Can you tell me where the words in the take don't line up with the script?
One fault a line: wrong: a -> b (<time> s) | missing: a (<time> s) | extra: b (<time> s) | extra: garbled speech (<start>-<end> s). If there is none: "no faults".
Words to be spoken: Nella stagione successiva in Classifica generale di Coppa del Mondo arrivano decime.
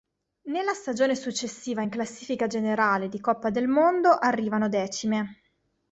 no faults